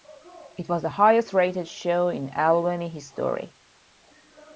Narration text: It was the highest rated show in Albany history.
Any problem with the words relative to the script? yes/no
no